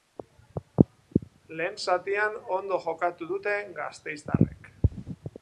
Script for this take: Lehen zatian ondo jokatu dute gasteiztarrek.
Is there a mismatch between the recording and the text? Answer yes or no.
no